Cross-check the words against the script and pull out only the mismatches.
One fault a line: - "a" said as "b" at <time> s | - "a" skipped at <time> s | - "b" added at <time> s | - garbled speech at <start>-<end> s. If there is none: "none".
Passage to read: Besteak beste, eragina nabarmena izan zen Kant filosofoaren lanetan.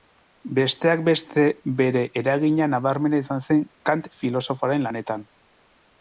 - "bere" added at 1.8 s